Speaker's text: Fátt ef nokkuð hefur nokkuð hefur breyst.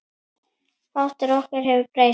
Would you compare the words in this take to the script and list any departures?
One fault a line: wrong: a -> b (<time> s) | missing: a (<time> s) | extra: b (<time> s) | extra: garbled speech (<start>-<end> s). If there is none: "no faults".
missing: nokkuð hefur (1.9 s)